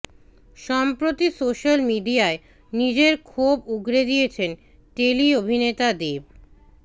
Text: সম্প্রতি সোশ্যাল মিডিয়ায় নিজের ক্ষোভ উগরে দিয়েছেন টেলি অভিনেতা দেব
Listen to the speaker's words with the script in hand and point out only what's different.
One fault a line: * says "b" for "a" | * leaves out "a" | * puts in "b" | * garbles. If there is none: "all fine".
all fine